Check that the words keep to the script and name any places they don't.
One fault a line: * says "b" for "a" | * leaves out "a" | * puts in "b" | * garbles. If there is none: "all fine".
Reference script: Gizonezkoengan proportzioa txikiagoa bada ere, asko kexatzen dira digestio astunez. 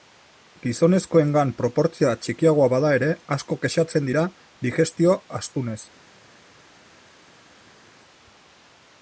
all fine